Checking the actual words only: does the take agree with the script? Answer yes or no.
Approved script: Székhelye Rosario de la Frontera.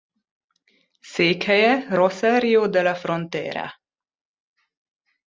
yes